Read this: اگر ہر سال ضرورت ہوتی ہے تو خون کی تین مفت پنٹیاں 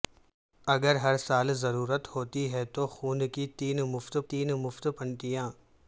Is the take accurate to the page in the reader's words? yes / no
no